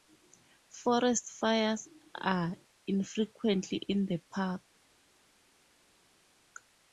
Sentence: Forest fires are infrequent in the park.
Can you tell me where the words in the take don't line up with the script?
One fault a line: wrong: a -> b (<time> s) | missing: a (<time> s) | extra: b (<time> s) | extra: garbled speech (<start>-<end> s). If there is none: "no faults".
no faults